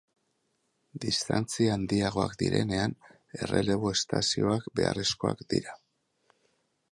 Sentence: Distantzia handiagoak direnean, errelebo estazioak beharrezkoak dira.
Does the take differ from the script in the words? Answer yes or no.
no